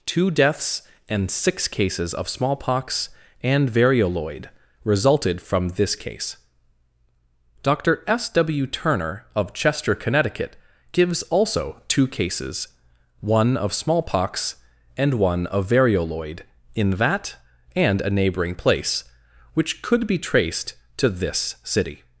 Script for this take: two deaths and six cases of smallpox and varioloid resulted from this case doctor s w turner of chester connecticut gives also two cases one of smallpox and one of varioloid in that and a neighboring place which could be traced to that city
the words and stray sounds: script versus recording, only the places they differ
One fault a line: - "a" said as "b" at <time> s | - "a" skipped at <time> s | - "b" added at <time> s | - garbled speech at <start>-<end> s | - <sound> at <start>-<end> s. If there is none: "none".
- "that" said as "this" at 21.1 s